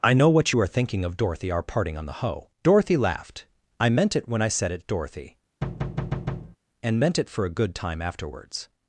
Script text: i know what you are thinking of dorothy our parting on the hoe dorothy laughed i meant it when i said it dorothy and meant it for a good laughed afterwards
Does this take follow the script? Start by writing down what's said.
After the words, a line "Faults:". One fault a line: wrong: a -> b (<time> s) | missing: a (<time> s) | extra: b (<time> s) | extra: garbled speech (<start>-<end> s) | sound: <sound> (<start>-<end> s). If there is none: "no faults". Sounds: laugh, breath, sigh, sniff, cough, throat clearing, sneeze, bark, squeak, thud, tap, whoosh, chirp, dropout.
i know what you are thinking of dorothy our parting on the hoe dorothy laughed i meant it when i said it dorothy and meant it for a good time afterwards
Faults:
sound: thud (5.6-6.6 s)
wrong: laughed -> time (7.7 s)